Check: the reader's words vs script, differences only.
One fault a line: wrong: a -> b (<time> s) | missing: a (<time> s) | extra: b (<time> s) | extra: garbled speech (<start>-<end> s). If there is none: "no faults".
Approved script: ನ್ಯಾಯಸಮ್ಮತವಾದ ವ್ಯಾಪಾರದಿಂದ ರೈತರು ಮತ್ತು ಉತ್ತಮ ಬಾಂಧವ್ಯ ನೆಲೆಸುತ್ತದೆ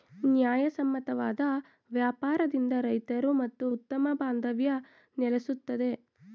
no faults